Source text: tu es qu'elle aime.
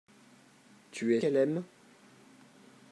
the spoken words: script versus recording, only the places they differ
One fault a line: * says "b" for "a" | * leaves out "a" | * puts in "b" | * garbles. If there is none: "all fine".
all fine